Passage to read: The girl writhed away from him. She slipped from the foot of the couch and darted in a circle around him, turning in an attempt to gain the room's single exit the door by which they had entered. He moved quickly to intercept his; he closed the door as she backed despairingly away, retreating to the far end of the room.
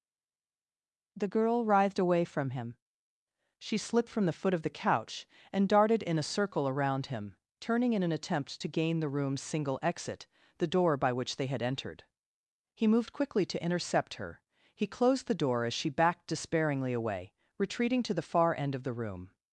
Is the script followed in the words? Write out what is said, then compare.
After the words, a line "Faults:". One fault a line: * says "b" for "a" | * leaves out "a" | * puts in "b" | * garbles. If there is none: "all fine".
The girl writhed away from him. She slipped from the foot of the couch and darted in a circle around him, turning in an attempt to gain the room's single exit the door by which they had entered. He moved quickly to intercept her; he closed the door as she backed despairingly away, retreating to the far end of the room.
Faults:
* says "her" for "his"